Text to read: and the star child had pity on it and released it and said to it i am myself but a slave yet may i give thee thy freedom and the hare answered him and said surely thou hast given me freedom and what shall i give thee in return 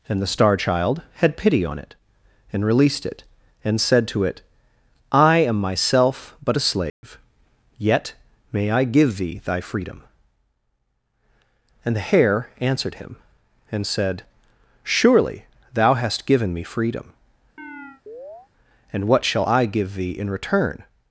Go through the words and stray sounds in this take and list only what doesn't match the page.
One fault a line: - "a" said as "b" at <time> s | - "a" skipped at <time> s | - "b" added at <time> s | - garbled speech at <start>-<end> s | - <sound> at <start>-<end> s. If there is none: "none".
- dropout at 6.9-7.0 s
- chirp at 17.6-18.5 s